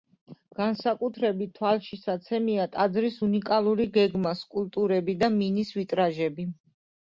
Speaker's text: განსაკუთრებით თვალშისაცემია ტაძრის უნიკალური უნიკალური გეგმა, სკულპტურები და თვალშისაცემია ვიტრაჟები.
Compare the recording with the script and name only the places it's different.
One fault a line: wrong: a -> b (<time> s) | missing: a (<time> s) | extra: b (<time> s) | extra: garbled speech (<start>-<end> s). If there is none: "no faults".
missing: უნიკალური (3.9 s)
wrong: თვალშისაცემია -> მინის (5.4 s)